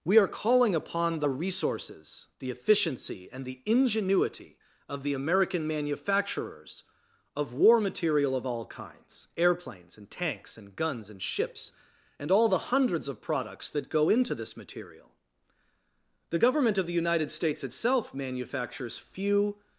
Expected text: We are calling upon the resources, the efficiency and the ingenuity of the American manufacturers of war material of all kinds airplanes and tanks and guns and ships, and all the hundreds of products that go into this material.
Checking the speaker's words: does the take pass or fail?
fail